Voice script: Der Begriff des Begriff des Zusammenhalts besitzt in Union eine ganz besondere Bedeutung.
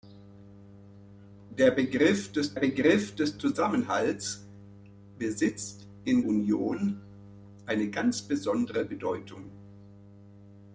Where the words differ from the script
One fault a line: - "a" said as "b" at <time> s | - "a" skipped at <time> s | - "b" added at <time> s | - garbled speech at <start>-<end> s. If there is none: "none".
none